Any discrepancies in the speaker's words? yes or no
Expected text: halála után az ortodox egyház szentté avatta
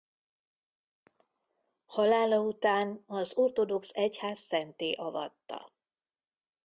no